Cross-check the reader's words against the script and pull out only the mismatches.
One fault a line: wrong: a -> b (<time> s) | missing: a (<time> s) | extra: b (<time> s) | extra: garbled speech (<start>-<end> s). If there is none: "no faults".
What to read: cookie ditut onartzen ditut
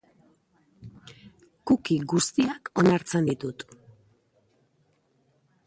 wrong: ditut -> guztiak (2.1 s)